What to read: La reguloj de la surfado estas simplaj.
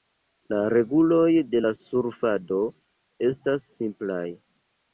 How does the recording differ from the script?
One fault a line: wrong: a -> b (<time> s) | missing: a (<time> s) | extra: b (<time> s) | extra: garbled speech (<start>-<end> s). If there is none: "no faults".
no faults